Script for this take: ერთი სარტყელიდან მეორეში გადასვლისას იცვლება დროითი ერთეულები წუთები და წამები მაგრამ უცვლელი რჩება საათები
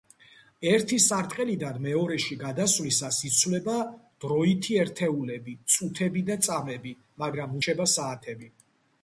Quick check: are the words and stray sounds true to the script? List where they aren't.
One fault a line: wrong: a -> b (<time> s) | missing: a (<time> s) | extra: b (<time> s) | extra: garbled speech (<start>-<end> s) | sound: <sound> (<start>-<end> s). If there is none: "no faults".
missing: უცვლელი (7.6 s)